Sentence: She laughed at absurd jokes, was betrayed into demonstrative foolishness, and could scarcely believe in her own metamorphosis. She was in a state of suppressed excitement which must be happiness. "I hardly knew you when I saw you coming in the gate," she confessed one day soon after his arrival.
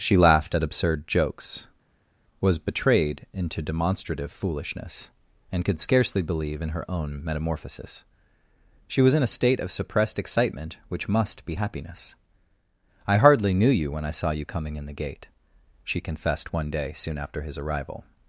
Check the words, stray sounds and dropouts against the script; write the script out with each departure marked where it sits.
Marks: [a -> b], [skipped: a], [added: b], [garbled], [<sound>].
She laughed at absurd jokes, was betrayed into demonstrative foolishness, and could scarcely believe in her own metamorphosis. She was in a state of suppressed excitement which must be happiness. "I hardly knew you when I saw you coming in the gate," she confessed one day soon after his arrival.